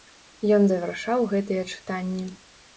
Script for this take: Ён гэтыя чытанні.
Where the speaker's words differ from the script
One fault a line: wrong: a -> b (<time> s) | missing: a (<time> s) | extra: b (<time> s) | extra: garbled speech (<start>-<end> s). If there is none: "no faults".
extra: завяршаў (0.7 s)